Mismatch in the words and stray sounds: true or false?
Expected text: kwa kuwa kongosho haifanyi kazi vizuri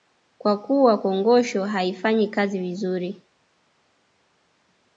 false